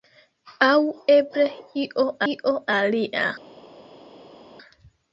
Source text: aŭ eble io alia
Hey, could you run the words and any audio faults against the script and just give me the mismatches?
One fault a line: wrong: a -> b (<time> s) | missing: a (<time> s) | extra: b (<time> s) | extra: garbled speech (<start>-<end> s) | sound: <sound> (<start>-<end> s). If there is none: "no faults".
extra: io (2.3 s)